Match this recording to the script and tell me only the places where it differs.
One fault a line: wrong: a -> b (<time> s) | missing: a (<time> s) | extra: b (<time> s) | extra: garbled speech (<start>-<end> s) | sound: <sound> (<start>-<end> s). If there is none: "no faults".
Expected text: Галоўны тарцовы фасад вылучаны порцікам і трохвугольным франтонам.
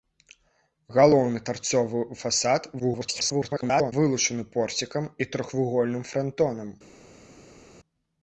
extra: garbled speech (2.8-3.9 s)